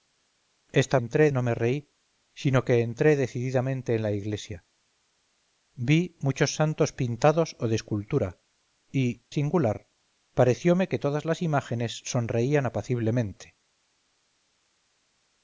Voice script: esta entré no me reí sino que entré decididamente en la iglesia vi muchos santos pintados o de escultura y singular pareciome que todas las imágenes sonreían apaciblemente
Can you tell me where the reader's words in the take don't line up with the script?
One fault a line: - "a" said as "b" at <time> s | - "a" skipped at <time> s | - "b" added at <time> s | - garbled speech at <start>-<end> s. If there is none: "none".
none